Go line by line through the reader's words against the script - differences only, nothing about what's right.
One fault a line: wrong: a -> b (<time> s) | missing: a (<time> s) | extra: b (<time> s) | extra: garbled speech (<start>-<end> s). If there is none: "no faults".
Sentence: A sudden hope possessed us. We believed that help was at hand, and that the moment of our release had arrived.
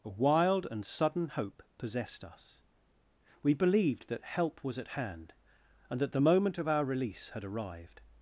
extra: wild and (0.1 s)